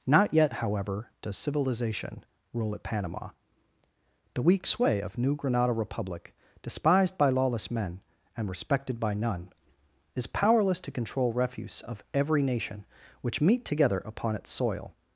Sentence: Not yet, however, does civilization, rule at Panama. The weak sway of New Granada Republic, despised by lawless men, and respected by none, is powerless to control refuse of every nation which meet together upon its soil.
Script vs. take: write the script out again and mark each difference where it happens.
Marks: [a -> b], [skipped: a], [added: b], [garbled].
Not yet, however, does civilization, rule at Panama. The weak sway of New Granada Republic, despised by lawless men, and respected by none, is powerless to control refuse of every nation which meet together upon its soil.